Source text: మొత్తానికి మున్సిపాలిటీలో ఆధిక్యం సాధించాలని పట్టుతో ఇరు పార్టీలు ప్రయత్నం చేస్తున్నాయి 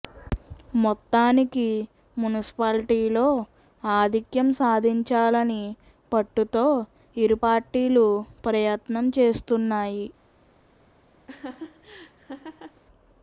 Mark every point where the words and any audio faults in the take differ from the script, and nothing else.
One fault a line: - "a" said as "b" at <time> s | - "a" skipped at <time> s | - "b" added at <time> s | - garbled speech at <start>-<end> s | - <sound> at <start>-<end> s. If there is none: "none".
- laugh at 11.3-12.8 s